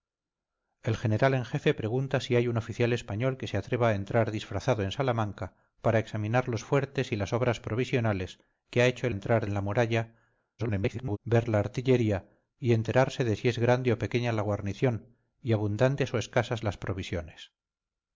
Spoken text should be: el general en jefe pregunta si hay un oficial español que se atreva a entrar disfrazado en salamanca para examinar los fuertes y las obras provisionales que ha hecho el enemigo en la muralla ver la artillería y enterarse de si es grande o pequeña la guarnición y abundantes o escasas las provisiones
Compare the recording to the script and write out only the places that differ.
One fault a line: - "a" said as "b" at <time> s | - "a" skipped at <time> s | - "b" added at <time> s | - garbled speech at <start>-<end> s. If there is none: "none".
- "enemigo" said as "entrar" at 9.1 s
- garbled speech at 10.6-11.2 s